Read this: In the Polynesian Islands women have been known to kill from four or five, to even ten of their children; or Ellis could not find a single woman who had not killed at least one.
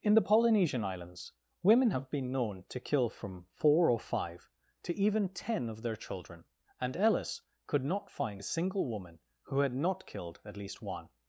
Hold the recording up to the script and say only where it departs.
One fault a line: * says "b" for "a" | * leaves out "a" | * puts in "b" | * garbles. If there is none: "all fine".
* says "and" for "or"